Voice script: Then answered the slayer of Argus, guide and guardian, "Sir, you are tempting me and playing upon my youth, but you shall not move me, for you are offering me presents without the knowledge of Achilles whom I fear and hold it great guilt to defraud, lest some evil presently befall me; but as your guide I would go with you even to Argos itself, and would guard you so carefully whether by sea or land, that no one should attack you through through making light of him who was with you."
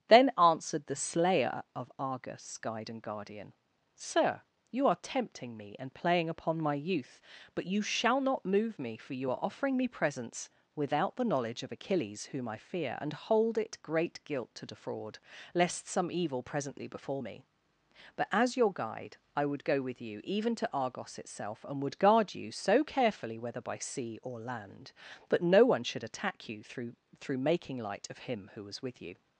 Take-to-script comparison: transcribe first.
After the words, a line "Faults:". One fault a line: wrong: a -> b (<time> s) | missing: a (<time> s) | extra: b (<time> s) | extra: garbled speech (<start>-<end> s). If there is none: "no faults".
Then answered the slayer of Argus, guide and guardian, "Sir, you are tempting me and playing upon my youth, but you shall not move me, for you are offering me presents without the knowledge of Achilles whom I fear and hold it great guilt to defraud, lest some evil presently befall me; but as your guide I would go with you even to Argos itself, and would guard you so carefully whether by sea or land, that no one should attack you through through making light of him who was with you."
Faults:
no faults